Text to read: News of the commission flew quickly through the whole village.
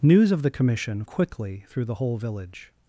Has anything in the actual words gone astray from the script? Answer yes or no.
yes